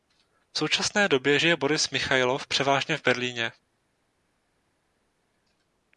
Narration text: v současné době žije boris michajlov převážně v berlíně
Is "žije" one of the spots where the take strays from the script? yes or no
no